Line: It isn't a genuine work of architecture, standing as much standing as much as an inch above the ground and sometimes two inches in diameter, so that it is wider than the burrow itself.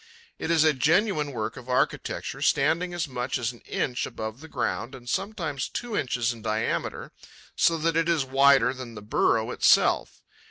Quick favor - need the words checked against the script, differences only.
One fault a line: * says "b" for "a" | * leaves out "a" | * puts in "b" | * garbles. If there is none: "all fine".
* says "is" for "isn't"
* leaves out "standing as much"